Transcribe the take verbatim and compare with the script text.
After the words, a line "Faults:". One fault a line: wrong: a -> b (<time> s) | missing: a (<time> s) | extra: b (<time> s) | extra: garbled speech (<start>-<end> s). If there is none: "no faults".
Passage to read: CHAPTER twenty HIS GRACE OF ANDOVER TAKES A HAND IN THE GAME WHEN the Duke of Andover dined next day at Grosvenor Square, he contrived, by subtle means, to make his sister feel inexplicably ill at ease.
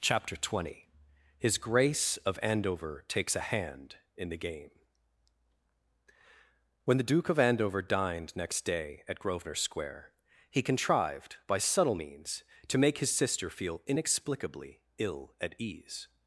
CHAPTER twenty HIS GRACE OF ANDOVER TAKES A HAND IN THE GAME WHEN the Duke of Andover dined next day at Grosvenor Square, he contrived, by subtle means, to make his sister feel inexplicably ill at ease.
Faults:
no faults